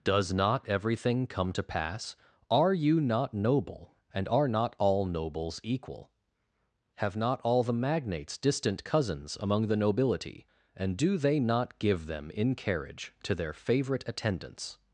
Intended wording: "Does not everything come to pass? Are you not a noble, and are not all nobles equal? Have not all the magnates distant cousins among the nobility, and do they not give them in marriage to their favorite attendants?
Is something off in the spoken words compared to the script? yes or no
yes